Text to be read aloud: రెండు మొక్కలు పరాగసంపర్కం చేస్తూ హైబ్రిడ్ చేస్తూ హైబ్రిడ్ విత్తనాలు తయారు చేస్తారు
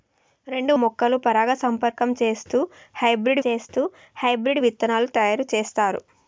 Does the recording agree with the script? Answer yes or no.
yes